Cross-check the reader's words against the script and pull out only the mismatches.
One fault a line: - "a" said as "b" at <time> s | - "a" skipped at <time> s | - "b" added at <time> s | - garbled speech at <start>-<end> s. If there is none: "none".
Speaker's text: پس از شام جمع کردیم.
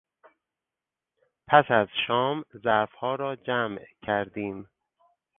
- "ظرفها را" added at 2.6 s